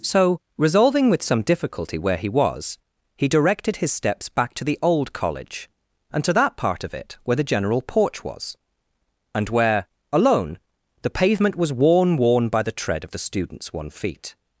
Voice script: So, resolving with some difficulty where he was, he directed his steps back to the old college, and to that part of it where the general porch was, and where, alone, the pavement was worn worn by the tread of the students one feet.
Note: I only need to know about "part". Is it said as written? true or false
true